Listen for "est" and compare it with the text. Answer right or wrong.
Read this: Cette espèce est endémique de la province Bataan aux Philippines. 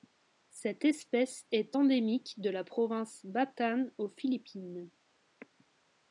right